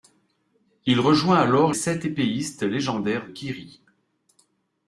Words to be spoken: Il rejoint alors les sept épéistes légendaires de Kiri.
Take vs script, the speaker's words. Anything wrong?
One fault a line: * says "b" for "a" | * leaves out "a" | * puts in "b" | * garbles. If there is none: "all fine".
* leaves out "les"
* leaves out "de"